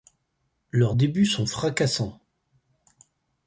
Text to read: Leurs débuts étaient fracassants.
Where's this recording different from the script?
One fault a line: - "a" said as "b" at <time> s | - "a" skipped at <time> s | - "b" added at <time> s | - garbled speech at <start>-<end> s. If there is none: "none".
- "étaient" said as "sont" at 1.3 s